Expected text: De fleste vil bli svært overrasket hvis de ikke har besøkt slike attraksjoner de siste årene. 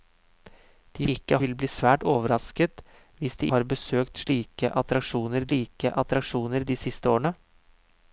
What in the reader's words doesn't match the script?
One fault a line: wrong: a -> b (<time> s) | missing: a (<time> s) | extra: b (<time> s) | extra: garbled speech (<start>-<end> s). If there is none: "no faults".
wrong: fleste -> ikke (1.1 s)
missing: ikke (3.5 s)
extra: slike attraksjoner (5.5 s)